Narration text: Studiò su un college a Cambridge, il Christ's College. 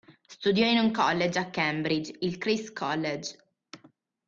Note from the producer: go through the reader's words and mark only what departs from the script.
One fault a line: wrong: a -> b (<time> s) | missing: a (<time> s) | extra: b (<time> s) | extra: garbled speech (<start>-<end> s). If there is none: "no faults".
wrong: su -> in (0.7 s)